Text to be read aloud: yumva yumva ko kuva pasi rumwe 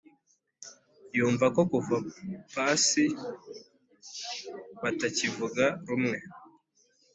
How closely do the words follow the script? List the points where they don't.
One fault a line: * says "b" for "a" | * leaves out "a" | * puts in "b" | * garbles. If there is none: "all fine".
* leaves out "yumva"
* puts in "batakivuga"